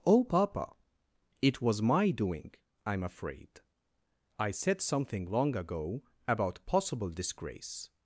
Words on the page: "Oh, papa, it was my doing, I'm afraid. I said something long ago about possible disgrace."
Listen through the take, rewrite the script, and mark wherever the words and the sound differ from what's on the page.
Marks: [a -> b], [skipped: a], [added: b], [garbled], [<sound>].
"Oh, papa, it was my doing, I'm afraid. I said something long ago about possible disgrace."